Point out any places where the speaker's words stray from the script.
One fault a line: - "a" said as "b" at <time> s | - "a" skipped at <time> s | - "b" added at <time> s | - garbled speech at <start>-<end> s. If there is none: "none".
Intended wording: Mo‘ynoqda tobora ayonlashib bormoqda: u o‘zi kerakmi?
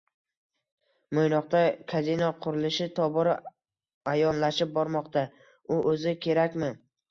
- "kazino qurilishi" added at 1.9 s